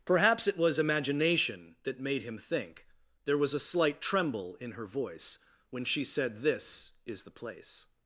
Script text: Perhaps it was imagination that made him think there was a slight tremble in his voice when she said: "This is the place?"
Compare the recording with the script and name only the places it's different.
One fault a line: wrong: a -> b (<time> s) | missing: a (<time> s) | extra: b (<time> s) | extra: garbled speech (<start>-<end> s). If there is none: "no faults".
wrong: his -> her (4.7 s)